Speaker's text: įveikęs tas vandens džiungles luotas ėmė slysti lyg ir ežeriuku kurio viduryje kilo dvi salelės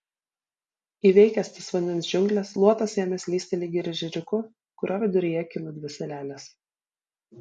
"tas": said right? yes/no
yes